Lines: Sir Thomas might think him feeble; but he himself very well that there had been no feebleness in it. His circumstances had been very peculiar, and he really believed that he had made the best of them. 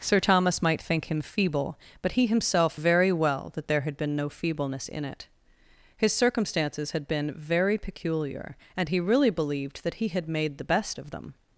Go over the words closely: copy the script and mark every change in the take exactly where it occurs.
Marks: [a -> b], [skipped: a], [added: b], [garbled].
Sir Thomas might think him feeble; but he himself very well that there had been no feebleness in it. His circumstances had been very peculiar, and he really believed that he had made the best of them.